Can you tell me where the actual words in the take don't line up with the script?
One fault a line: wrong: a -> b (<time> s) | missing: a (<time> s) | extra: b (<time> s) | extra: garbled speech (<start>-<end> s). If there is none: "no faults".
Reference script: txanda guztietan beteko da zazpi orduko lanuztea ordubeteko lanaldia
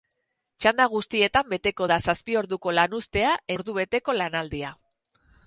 no faults